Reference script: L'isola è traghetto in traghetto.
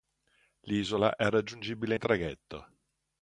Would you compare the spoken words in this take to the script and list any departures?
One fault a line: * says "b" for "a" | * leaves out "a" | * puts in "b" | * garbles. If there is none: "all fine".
* says "raggiungibile" for "traghetto"